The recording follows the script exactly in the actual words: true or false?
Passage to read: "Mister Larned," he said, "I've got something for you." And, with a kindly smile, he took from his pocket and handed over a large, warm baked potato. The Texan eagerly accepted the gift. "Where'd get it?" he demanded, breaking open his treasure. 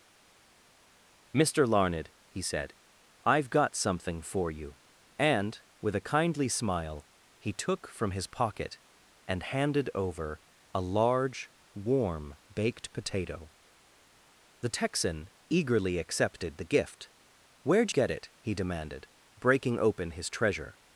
true